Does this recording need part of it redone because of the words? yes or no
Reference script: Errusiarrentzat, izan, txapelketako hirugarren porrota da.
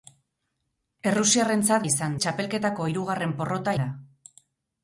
no